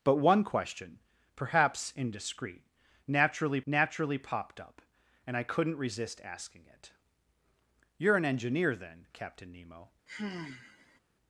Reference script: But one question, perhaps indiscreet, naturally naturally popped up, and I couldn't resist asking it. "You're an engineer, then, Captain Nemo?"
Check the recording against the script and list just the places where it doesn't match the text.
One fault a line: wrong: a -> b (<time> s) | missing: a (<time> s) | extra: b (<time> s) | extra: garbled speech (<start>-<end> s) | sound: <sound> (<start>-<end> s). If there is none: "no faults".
sound: sigh (10.1-11.0 s)